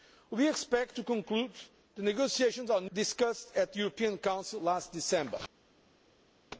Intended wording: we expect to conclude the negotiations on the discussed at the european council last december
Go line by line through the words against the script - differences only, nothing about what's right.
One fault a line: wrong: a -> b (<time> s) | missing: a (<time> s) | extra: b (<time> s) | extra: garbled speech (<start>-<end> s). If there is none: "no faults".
no faults